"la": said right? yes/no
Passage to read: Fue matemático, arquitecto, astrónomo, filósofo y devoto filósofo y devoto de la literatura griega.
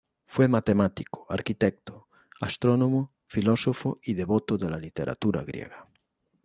yes